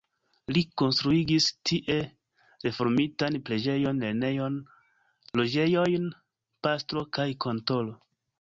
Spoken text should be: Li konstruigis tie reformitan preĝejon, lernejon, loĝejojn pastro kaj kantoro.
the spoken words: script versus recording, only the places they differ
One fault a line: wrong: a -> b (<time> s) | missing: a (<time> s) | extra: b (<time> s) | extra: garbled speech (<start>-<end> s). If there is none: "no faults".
no faults